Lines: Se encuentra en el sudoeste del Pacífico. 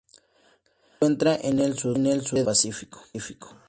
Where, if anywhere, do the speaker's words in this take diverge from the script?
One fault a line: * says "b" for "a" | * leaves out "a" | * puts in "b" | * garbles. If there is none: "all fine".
* leaves out "del"